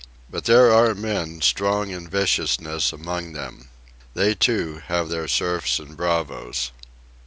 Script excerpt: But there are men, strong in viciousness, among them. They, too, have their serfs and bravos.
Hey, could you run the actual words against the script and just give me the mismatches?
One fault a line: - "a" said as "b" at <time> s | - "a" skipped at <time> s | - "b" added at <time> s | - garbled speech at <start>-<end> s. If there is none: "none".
none